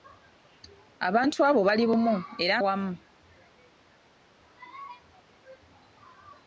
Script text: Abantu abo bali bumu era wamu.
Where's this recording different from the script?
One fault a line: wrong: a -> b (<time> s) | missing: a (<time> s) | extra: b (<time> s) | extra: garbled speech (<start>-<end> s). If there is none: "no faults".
no faults